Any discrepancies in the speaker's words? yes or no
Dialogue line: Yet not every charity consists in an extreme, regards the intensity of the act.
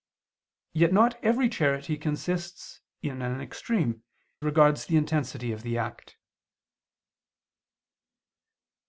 no